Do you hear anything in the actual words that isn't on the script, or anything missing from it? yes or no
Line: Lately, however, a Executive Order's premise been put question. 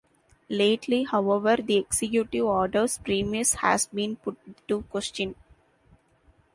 yes